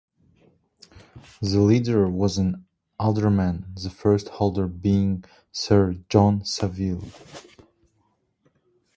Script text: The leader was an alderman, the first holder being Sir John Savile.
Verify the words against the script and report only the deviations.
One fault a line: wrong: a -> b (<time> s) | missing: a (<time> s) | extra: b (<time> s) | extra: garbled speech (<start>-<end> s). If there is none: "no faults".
no faults